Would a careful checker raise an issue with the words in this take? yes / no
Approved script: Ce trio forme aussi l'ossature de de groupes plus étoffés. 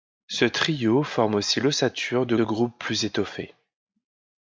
no